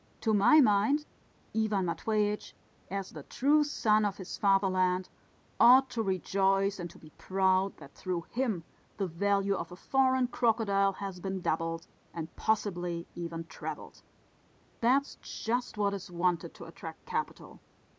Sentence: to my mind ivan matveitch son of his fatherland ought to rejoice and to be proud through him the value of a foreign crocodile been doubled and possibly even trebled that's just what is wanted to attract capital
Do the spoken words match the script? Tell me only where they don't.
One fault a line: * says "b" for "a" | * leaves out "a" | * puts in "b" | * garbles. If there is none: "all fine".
* puts in "as the true"
* puts in "that"
* puts in "has"